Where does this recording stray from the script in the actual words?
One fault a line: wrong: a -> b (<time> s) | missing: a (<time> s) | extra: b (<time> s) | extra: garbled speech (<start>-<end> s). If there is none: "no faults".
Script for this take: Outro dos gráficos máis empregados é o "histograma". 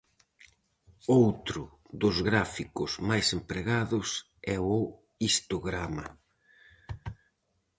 no faults